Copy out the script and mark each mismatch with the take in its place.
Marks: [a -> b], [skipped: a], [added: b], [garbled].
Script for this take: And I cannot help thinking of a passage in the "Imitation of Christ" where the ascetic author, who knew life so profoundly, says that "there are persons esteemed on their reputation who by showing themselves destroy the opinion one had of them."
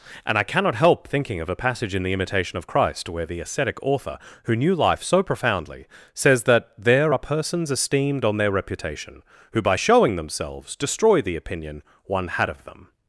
And I cannot help thinking of a passage in the "Imitation of Christ" where the ascetic author, who knew life so profoundly, says that "there are persons esteemed on their reputation who by showing themselves destroy the opinion one had of them."